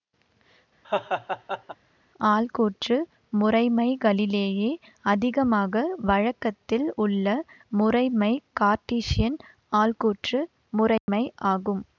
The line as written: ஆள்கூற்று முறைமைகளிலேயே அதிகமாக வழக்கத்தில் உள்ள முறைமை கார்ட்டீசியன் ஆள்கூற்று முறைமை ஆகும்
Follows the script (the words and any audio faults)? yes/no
no